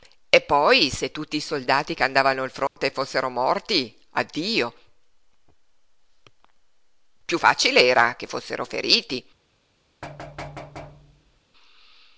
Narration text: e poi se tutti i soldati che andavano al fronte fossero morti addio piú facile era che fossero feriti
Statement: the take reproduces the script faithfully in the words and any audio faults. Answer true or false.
false